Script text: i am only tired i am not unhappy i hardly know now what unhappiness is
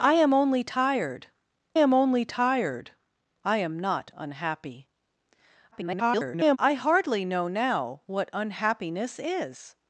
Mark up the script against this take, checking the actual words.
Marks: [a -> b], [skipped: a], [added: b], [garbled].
i am only tired [added: am only tired] i am not unhappy [garbled] i hardly know now what unhappiness is